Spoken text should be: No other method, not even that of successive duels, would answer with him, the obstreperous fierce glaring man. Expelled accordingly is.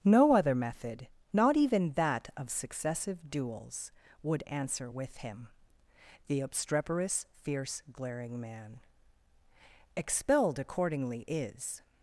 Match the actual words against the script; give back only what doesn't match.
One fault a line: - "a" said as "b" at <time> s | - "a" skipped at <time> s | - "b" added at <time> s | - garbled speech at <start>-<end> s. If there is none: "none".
none